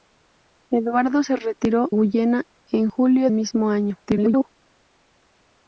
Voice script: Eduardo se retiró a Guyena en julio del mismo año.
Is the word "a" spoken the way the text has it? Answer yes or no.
no